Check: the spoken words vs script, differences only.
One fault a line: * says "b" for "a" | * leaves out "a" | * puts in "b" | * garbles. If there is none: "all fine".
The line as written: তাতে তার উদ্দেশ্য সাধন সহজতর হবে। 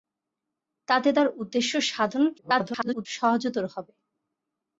* garbles